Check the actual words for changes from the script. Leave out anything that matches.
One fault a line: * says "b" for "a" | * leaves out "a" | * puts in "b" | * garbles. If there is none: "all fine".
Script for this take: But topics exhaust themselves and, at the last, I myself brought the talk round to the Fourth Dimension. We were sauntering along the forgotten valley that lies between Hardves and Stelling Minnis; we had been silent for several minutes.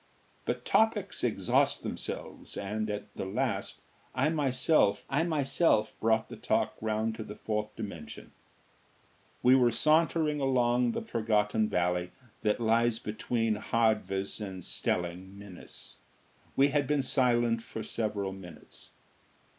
* puts in "I myself"